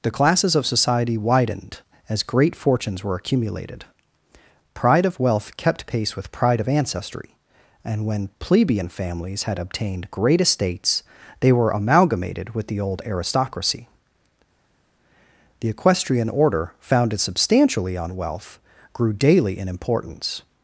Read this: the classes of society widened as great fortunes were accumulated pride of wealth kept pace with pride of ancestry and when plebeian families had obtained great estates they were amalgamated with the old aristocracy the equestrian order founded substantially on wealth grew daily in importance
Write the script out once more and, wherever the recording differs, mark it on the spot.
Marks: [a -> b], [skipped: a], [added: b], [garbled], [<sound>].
the classes of society widened as great fortunes were accumulated pride of wealth kept pace with pride of ancestry and when plebeian families had obtained great estates they were amalgamated with the old aristocracy the equestrian order founded substantially on wealth grew daily in importance